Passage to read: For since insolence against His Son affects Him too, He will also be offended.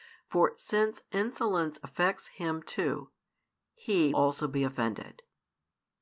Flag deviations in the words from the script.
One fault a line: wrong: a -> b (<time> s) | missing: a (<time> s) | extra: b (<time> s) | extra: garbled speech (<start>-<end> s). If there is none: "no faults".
missing: against His Son (1.8 s)
missing: will (4.1 s)